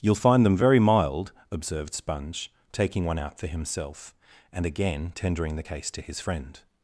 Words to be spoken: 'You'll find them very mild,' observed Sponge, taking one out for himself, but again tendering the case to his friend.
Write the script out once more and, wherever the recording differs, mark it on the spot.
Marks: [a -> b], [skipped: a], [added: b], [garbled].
'You'll find them very mild,' observed Sponge, taking one out for himself, [but -> and] again tendering the case to his friend.